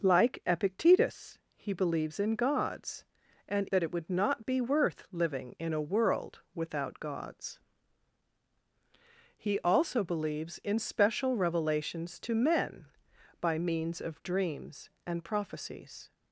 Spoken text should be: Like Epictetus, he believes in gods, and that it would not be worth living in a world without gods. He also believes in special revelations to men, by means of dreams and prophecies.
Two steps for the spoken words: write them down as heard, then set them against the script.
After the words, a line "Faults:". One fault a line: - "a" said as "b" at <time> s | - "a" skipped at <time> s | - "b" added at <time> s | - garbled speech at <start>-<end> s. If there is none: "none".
Like Epictetus, he believes in gods, and that it would not be worth living in a world without gods. He also believes in special revelations to men, by means of dreams and prophecies.
Faults:
none